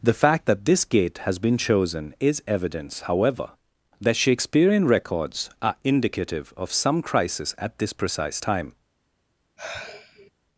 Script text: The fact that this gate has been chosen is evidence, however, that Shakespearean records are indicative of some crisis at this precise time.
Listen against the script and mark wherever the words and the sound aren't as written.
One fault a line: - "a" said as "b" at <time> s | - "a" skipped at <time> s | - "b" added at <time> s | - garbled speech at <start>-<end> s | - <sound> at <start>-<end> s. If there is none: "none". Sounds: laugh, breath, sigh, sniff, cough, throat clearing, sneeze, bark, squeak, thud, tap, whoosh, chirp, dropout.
- sigh at 9.6-10.3 s